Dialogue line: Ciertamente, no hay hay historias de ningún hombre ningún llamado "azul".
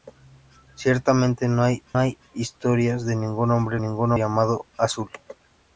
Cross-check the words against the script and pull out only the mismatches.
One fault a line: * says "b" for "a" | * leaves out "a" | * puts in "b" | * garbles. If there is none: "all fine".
all fine